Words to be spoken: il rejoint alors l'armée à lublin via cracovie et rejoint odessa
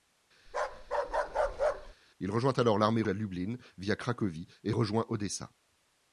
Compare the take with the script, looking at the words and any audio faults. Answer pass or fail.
fail